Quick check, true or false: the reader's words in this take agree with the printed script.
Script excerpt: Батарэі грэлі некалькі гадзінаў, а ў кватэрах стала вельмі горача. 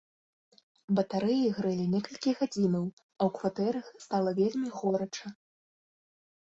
true